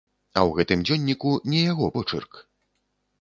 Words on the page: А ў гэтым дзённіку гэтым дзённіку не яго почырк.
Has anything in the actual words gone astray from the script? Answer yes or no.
yes